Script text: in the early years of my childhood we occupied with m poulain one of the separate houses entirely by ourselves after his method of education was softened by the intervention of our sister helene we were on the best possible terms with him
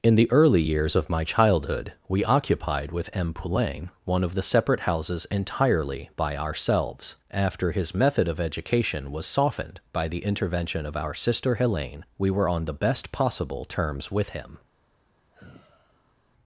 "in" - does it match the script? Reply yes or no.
yes